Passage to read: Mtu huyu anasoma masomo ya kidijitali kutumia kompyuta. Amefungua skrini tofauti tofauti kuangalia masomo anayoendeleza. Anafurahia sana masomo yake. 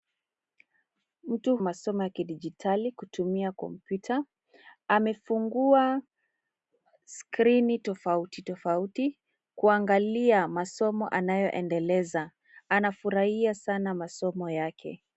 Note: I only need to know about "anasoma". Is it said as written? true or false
false